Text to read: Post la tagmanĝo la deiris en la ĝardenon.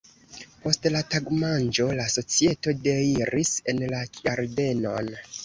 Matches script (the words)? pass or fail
fail